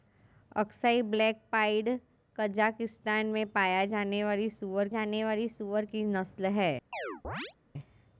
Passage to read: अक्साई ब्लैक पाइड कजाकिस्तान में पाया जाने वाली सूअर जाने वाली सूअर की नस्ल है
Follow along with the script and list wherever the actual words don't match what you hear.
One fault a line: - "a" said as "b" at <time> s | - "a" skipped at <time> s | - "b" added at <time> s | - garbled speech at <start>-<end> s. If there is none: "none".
none